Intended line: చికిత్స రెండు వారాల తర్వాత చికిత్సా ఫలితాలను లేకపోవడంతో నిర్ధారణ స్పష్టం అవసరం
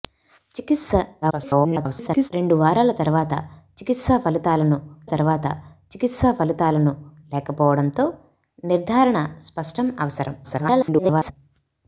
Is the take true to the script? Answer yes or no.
no